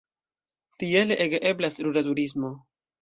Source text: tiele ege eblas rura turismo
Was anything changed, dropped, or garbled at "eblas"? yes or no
no